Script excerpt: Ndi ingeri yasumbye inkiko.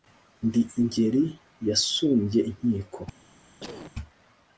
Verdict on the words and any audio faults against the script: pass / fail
fail